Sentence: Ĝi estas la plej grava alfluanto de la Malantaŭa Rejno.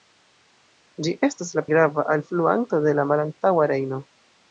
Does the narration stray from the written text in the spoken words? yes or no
yes